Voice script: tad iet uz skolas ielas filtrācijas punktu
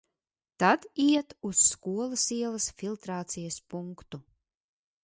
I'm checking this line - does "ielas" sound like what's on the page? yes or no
yes